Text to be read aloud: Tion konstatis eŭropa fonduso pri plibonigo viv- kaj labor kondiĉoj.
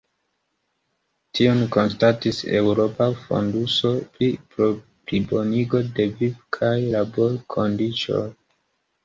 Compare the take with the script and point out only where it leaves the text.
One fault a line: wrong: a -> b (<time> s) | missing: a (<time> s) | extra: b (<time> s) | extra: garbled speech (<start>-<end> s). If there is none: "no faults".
extra: de (6.0 s)